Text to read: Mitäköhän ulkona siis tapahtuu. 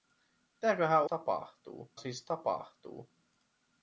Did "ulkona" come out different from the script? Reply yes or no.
yes